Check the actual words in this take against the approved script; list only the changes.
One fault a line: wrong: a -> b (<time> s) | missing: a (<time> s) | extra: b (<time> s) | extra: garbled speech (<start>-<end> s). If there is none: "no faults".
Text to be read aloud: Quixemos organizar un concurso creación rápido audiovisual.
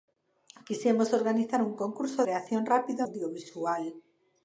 no faults